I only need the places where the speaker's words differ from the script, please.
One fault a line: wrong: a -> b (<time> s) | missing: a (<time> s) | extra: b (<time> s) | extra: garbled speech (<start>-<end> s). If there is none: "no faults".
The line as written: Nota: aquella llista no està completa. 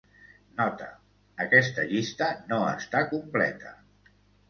wrong: aquella -> aquesta (1.4 s)